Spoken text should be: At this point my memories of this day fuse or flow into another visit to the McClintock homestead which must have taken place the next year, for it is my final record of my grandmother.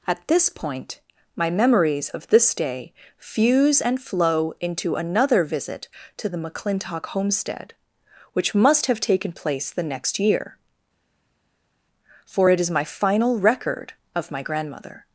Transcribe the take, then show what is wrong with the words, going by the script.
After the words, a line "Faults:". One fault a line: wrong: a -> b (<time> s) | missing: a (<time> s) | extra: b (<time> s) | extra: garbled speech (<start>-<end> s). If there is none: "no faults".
At this point my memories of this day fuse and flow into another visit to the McClintock homestead which must have taken place the next year, for it is my final record of my grandmother.
Faults:
wrong: or -> and (3.8 s)